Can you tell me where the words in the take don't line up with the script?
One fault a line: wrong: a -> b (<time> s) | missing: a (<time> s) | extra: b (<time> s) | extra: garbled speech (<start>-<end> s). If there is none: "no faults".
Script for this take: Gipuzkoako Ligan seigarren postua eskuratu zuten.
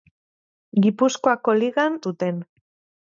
missing: seigarren postua eskuratu (2.0 s)